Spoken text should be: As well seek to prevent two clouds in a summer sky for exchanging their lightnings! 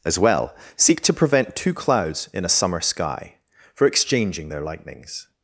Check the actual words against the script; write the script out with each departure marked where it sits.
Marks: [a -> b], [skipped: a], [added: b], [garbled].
As well seek to prevent two clouds in a summer sky for exchanging their lightnings!